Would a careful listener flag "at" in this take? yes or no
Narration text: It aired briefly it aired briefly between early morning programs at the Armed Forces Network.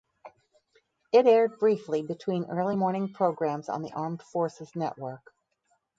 yes